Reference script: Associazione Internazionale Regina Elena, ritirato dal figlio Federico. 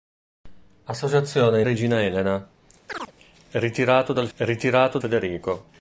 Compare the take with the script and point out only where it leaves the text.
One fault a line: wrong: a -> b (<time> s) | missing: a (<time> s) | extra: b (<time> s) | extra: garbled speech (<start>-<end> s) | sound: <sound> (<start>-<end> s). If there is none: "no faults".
missing: Internazionale (1.6 s)
sound: chirp (2.9-3.1 s)
wrong: figlio -> ritirato (4.4 s)